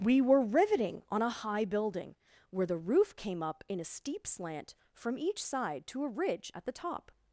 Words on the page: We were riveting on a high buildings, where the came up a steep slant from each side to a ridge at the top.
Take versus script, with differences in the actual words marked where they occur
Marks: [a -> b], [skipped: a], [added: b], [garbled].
We were riveting on a high [buildings, -> building] where the [added: roof] came up [added: in] a steep slant from each side to a ridge at the top.